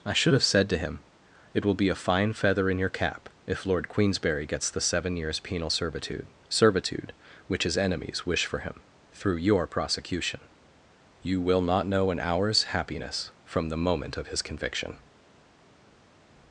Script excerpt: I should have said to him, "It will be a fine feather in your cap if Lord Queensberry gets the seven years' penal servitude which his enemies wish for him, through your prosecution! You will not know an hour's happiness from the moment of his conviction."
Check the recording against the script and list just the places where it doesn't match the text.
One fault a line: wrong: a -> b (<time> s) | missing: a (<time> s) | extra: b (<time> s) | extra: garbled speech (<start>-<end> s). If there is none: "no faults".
extra: servitude (6.5 s)